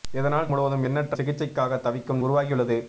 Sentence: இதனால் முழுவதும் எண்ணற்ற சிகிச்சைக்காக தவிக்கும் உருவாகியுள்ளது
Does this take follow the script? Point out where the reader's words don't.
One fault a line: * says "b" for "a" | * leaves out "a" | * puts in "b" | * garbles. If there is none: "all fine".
all fine